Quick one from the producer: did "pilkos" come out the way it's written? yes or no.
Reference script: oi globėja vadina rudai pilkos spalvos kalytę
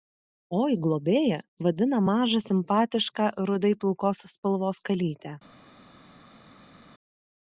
yes